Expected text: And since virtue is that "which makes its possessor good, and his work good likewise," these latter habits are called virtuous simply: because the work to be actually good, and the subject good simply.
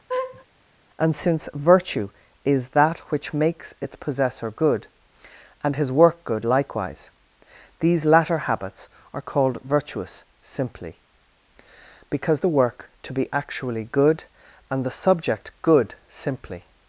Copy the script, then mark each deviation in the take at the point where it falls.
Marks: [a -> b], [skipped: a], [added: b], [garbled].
And since virtue is that "which makes its possessor good, and his work good likewise," these latter habits are called virtuous simply: because the work to be actually good, and the subject good simply.